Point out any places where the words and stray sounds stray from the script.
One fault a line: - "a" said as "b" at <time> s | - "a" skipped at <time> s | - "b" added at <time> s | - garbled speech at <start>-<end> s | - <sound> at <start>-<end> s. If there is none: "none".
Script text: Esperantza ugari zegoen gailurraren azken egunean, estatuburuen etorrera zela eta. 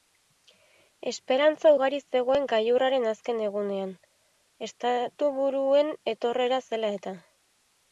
none